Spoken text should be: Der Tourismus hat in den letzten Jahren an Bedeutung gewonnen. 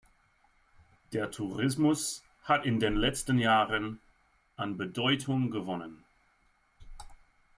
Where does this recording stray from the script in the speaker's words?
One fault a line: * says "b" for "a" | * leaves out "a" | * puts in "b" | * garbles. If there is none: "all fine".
all fine